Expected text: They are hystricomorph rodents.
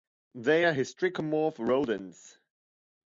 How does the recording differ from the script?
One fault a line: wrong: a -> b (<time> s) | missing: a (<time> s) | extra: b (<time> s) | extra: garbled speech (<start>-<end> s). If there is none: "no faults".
no faults